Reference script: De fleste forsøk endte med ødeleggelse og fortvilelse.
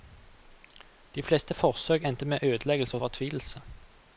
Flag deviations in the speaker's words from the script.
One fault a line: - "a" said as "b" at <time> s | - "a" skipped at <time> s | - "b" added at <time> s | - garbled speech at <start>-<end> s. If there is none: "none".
none